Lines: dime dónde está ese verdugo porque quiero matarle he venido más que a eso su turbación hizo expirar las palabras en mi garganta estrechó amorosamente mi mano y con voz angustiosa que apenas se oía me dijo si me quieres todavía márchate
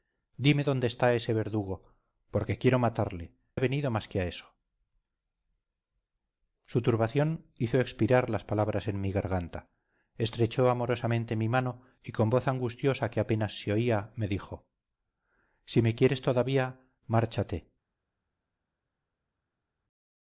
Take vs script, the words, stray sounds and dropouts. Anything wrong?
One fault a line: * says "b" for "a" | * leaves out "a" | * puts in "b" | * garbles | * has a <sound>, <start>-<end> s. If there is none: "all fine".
all fine